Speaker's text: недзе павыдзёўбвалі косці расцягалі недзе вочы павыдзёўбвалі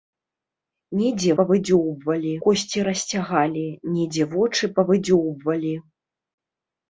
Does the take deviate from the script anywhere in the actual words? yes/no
no